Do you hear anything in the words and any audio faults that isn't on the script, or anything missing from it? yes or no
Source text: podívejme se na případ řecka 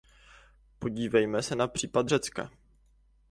no